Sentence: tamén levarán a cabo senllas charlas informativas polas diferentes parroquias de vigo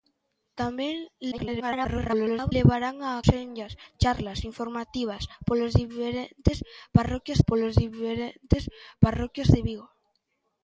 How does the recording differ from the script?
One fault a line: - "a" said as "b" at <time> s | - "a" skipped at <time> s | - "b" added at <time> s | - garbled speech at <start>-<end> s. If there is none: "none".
- garbled speech at 1.3-2.5 s
- "cabo" skipped at 3.1 s
- "polas diferentes parroquias" added at 7.5 s